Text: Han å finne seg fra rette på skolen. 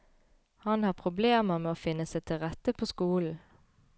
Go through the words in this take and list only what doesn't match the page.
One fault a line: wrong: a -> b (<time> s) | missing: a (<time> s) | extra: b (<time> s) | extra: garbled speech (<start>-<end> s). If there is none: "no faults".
extra: har problemer med (0.8 s)
wrong: fra -> til (2.2 s)